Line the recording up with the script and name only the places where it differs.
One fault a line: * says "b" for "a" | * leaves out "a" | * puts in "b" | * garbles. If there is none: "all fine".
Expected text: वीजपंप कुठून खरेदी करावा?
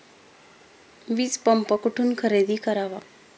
all fine